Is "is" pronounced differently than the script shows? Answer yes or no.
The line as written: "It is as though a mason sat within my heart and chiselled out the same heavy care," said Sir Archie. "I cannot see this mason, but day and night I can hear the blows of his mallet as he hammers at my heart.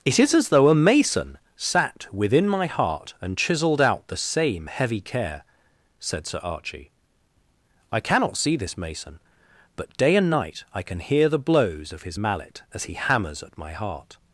no